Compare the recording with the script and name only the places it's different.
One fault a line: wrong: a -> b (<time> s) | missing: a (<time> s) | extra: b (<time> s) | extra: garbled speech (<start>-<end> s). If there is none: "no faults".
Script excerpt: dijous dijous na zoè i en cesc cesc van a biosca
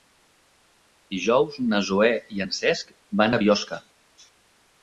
missing: dijous (1.6 s)
missing: cesc (3.0 s)